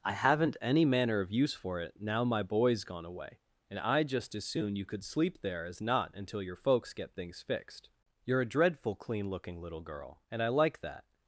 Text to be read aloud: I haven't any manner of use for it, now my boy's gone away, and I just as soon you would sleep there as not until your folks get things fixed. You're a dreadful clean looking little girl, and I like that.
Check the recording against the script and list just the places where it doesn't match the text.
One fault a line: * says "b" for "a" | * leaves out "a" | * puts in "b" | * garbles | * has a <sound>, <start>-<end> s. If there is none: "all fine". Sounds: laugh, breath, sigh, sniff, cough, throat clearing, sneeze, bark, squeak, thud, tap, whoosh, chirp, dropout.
* says "could" for "would"